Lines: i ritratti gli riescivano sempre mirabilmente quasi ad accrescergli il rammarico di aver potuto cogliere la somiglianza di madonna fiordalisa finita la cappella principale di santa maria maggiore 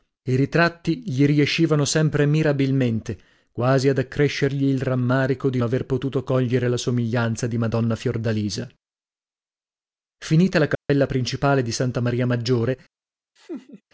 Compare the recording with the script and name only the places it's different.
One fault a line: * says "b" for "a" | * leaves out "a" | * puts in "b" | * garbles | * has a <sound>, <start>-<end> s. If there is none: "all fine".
* has a dropout, 10.7-10.9 s
* has a laugh, 13.4-13.8 s